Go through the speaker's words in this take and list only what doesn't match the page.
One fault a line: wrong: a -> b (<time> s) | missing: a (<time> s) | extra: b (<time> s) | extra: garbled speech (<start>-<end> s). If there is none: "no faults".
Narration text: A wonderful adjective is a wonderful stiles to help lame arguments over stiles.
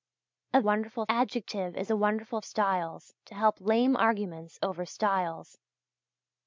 no faults